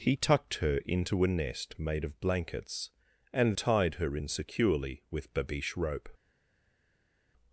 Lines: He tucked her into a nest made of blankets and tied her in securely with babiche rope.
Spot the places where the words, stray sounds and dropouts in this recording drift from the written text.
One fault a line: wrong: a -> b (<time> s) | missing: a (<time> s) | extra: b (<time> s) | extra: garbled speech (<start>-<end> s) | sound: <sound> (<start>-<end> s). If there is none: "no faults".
no faults